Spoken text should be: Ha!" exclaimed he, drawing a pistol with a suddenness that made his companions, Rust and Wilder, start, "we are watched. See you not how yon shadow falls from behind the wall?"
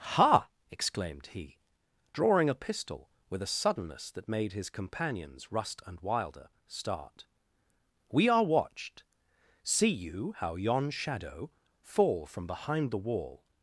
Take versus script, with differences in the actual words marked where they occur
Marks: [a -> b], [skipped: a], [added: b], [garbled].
Ha!" exclaimed he, drawing a pistol with a suddenness that made his companions, Rust and Wilder, start, "we are watched. See you [skipped: not] how yon shadow [falls -> fall] from behind the wall?"